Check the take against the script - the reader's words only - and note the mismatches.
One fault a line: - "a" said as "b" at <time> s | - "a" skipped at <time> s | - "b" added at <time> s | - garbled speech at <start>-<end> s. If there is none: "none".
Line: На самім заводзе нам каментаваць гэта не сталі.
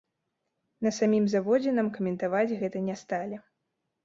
none